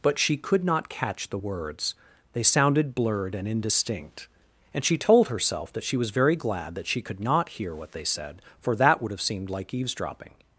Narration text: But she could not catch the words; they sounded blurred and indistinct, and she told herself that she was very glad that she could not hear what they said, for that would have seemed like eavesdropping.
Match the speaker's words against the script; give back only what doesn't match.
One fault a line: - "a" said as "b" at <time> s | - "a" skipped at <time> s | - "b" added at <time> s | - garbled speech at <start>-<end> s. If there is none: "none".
none